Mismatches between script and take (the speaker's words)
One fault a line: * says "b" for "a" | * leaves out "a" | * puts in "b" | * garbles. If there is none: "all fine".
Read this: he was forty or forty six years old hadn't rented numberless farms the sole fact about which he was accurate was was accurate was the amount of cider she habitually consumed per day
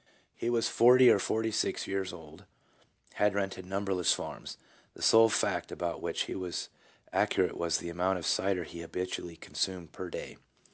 * says "had" for "hadn't"
* leaves out "was accurate was"
* says "he" for "she"